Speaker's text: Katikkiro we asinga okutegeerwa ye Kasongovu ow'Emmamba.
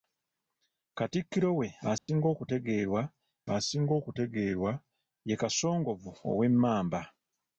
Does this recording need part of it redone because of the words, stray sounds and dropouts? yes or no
yes